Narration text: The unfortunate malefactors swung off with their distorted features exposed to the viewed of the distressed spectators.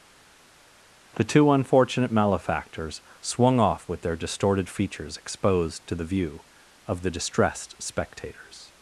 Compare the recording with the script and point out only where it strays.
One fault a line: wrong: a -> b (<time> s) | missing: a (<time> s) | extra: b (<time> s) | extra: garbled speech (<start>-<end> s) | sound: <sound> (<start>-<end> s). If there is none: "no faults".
extra: two (1.2 s)
wrong: viewed -> view (6.0 s)